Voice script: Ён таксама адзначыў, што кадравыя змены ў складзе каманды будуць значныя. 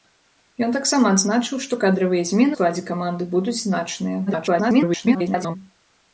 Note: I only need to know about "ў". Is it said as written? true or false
false